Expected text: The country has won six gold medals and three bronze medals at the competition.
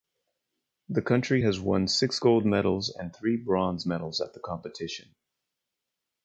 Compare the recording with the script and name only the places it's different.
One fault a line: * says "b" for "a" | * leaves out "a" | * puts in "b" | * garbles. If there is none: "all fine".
all fine